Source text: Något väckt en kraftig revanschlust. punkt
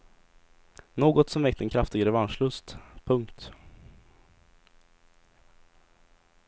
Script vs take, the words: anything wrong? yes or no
yes